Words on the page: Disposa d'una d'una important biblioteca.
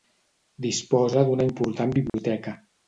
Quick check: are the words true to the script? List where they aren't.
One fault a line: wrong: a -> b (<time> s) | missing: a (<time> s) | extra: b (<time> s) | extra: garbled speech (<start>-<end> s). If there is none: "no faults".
missing: d'una (1.5 s)